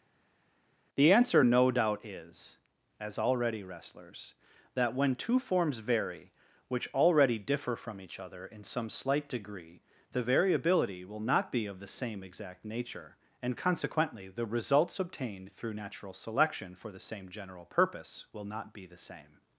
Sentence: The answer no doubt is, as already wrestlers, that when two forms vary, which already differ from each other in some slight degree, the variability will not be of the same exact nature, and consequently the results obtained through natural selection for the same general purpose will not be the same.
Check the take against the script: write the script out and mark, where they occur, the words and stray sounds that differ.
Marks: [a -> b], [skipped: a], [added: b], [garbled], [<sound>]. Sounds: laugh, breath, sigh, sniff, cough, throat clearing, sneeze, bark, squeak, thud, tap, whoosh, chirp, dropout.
The answer no doubt is, as already wrestlers, that when two forms vary, which already differ from each other in some slight degree, the variability will not be of the same exact nature, and consequently the results obtained through natural selection for the same general purpose will not be the same.